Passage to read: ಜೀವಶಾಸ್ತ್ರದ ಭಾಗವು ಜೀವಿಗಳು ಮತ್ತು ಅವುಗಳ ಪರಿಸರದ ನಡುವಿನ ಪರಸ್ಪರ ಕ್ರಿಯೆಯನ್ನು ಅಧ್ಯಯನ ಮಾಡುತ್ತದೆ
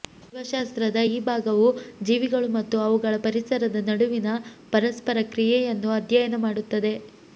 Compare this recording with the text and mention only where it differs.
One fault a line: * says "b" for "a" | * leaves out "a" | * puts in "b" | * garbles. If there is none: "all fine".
* puts in "ಈ"